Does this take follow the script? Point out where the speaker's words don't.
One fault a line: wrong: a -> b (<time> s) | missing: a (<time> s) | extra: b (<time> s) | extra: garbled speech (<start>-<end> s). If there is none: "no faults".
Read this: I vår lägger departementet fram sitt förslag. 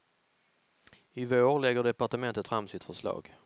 no faults